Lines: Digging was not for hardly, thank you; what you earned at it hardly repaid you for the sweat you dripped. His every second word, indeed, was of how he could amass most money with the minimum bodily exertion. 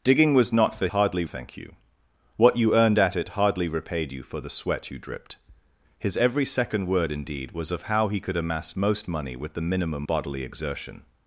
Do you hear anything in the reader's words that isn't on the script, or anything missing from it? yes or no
no